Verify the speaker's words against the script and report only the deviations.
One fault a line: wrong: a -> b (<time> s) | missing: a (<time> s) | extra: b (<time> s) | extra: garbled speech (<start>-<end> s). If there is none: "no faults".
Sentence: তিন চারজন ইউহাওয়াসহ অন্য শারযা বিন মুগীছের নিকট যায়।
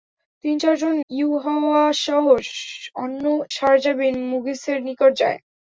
no faults